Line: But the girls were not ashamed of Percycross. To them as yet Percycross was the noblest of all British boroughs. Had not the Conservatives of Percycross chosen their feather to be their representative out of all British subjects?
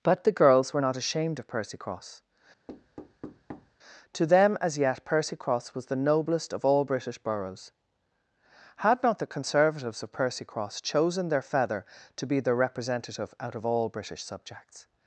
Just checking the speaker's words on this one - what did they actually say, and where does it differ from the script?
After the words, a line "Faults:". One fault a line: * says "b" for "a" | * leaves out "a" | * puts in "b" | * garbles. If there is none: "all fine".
But the girls were not ashamed of Percycross. To them as yet Percycross was the noblest of all British boroughs. Had not the Conservatives of Percycross chosen their feather to be their representative out of all British subjects?
Faults:
all fine